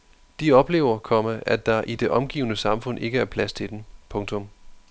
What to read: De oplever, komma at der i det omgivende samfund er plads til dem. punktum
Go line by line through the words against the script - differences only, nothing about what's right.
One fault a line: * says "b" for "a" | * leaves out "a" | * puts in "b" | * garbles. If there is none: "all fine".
* puts in "ikke"